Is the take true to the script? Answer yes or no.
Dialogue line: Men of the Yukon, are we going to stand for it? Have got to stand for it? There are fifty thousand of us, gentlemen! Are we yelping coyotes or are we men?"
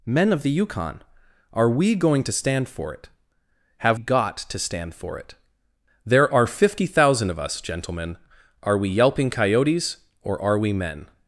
yes